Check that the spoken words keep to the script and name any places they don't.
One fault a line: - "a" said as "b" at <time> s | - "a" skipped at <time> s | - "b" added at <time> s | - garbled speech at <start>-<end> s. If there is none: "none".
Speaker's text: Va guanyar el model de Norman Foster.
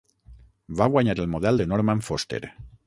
none